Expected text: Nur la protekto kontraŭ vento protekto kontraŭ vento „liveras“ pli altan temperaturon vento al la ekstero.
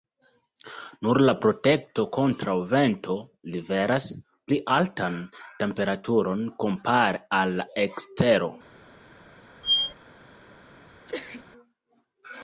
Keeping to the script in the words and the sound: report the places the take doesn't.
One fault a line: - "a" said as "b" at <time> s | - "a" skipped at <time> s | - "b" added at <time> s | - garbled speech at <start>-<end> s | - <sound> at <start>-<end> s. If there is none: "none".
- "protekto kontraŭ vento" skipped at 3.2 s
- "vento" said as "kompare" at 6.7 s
- squeak at 9.6-9.9 s
- sneeze at 11.1-11.5 s